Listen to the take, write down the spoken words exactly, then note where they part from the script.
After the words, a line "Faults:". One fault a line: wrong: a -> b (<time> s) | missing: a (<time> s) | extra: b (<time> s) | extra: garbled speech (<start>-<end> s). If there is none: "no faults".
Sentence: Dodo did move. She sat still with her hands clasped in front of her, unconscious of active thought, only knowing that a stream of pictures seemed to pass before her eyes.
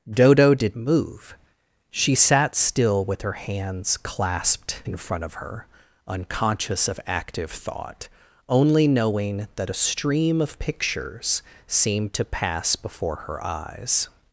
Dodo did move. She sat still with her hands clasped in front of her, unconscious of active thought, only knowing that a stream of pictures seemed to pass before her eyes.
Faults:
no faults